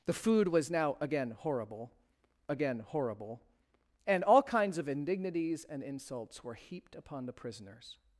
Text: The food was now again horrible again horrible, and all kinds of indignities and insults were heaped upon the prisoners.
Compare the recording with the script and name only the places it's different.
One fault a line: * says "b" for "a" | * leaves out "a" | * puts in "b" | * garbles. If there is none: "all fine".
all fine